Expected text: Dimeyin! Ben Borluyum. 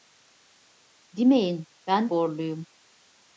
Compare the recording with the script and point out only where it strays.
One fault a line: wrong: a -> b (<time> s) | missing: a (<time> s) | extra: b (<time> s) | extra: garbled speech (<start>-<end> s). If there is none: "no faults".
no faults